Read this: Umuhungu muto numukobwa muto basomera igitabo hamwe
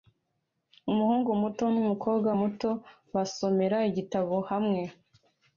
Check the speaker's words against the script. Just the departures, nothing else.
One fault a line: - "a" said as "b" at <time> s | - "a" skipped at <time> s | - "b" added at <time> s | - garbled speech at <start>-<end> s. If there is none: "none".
none